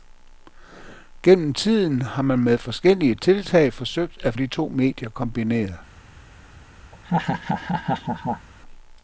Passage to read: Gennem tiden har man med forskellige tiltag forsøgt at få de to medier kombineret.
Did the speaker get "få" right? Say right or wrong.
wrong